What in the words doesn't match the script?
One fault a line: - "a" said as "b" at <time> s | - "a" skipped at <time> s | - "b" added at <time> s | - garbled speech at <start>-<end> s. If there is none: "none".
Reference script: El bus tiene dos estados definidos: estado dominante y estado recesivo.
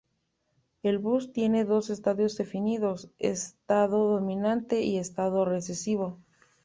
none